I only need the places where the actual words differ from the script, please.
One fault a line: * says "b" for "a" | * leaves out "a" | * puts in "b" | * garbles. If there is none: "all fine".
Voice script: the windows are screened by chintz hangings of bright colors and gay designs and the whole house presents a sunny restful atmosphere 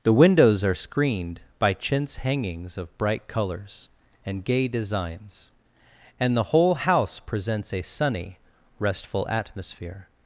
all fine